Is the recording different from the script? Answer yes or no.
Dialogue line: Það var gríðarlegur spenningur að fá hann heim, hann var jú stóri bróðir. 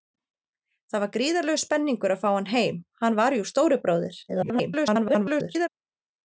yes